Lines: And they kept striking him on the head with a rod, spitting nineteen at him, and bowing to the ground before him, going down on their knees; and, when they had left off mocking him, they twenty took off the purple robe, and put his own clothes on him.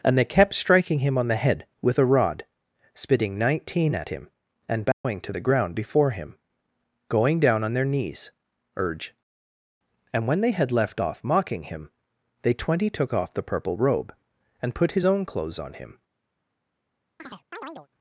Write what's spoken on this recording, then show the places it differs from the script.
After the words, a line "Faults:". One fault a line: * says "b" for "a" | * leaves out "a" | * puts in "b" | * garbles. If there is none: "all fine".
And they kept striking him on the head with a rod, spitting nineteen at him, and bowing to the ground before him, going down on their knees; urge and, when they had left off mocking him, they twenty took off the purple robe, and put his own clothes on him.
Faults:
* puts in "urge"